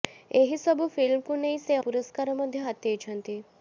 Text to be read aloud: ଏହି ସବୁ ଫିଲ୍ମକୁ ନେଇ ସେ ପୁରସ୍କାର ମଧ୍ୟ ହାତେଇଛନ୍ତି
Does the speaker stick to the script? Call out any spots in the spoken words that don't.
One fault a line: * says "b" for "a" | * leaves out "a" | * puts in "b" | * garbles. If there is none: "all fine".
all fine